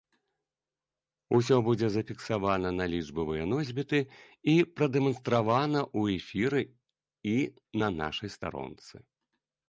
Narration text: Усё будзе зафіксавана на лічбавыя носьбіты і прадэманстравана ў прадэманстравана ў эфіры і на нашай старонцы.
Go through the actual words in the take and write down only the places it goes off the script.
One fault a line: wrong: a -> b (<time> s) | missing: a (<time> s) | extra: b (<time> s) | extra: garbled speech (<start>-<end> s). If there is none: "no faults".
missing: прадэманстравана ў (6.2 s)